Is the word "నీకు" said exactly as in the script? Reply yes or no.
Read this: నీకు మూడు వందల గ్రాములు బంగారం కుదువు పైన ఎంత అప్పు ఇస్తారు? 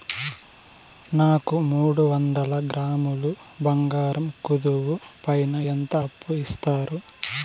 no